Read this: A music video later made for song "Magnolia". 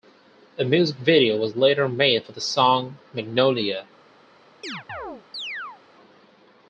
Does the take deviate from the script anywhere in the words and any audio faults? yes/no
yes